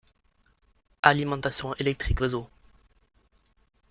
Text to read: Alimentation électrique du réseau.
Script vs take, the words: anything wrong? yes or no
yes